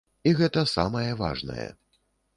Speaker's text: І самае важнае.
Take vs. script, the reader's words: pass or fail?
fail